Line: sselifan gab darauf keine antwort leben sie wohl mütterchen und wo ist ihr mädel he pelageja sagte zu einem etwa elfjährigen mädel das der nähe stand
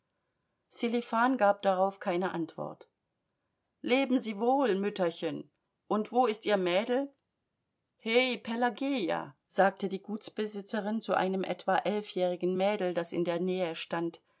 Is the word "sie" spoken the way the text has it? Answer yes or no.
yes